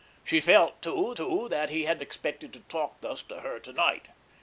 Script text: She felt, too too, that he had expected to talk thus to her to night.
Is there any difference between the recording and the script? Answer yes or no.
no